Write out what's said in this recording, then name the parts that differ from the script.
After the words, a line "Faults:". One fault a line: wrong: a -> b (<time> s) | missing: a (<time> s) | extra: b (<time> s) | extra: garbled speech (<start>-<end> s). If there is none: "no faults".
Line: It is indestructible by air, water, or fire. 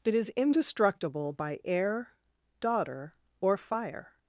It is indestructible by air, daughter, or fire.
Faults:
wrong: water -> daughter (2.6 s)